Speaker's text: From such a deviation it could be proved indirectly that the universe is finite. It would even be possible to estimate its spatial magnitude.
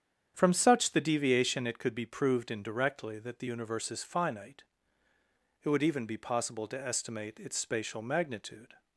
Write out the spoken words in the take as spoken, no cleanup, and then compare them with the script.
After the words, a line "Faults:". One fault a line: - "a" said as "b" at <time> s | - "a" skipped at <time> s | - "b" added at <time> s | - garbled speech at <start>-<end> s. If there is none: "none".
From such the deviation it could be proved indirectly that the universe is finite. It would even be possible to estimate its spatial magnitude.
Faults:
- "a" said as "the" at 0.9 s